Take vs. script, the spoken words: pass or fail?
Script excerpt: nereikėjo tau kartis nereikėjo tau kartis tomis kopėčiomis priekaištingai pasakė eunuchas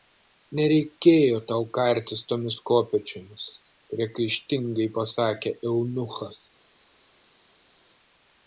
fail